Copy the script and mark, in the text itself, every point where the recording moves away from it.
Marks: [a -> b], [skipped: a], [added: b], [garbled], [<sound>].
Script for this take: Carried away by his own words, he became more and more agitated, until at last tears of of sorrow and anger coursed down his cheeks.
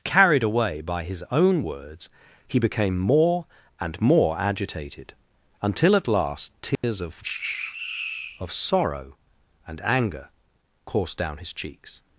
Carried away by his own words, he became more and more agitated, until at last tears [dropout] of of sorrow and anger coursed down his cheeks.